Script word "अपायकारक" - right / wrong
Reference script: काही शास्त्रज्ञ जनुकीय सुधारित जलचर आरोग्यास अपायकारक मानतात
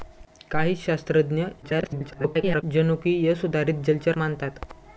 wrong